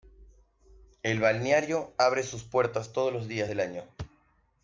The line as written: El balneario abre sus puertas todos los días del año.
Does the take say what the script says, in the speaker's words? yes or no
yes